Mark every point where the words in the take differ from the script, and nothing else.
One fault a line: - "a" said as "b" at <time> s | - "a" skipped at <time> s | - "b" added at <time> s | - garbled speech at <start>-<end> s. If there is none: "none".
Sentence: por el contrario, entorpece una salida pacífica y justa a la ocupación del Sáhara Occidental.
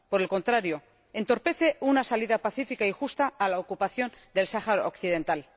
none